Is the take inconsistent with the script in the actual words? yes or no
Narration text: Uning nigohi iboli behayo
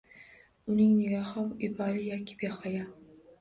yes